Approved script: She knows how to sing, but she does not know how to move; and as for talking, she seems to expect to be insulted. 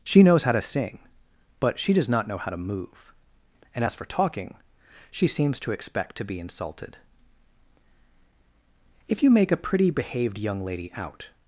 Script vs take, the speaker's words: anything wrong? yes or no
yes